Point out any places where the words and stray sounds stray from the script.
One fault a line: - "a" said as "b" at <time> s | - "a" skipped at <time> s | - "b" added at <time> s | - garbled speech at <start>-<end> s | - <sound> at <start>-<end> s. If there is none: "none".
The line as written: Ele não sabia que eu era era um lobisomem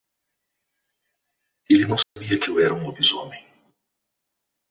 - dropout at 2.0-2.2 s
- "era" skipped at 2.7 s